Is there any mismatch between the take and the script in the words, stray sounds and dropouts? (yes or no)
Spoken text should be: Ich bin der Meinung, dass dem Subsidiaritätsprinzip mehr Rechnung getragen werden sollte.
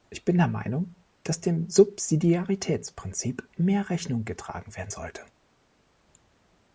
no